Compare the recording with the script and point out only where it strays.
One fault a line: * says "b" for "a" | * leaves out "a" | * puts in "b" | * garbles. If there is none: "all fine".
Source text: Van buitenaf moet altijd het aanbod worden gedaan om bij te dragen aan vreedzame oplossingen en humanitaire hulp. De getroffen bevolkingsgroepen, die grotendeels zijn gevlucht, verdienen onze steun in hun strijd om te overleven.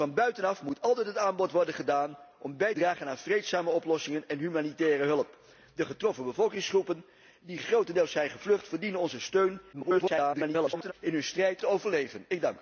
* leaves out "te"
* garbles
* leaves out "om"